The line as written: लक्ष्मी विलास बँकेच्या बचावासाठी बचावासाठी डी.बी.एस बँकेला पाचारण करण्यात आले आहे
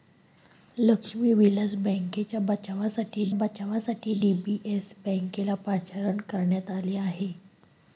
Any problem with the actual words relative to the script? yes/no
no